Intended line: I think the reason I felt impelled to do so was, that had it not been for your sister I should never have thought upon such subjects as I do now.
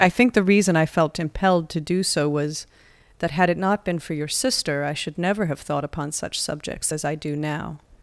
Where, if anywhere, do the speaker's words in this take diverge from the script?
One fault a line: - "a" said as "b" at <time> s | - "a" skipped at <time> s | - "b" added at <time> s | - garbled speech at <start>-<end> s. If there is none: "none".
none